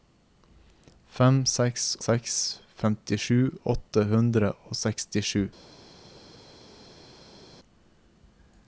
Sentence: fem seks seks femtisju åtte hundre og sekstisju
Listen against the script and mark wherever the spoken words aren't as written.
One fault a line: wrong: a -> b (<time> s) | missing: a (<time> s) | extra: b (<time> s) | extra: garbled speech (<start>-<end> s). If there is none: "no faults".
no faults